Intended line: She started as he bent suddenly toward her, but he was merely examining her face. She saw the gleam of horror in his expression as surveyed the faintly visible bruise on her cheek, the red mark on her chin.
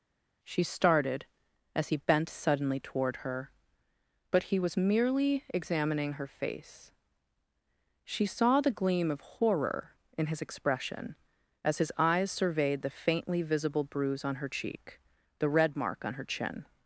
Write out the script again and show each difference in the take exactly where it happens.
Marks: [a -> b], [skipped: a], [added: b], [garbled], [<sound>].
She started as he bent suddenly toward her, but he was merely examining her face. She saw the gleam of horror in his expression as [added: his eyes] surveyed the faintly visible bruise on her cheek, the red mark on her chin.